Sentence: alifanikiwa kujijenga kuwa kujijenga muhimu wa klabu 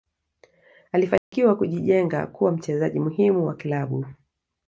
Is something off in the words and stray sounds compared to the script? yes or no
yes